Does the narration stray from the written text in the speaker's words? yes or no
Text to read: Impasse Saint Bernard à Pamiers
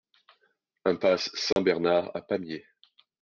no